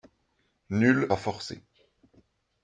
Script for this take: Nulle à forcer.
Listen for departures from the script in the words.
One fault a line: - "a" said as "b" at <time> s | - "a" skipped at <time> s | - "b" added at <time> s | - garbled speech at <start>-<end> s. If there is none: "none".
none